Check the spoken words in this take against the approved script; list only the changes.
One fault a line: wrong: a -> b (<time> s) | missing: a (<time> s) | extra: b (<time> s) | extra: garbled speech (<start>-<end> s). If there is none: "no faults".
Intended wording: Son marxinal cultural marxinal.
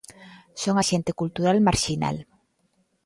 wrong: marxinal -> axente (0.8 s)